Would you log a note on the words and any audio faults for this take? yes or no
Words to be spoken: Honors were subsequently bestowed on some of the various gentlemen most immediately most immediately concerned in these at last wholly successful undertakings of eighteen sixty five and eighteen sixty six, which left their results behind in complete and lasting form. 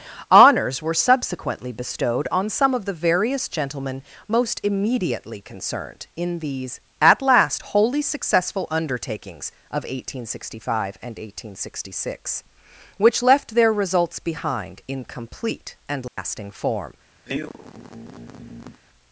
yes